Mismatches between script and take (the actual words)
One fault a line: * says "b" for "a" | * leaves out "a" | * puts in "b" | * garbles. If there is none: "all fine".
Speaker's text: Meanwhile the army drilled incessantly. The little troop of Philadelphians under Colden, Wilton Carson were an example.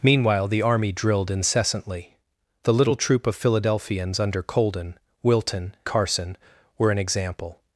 all fine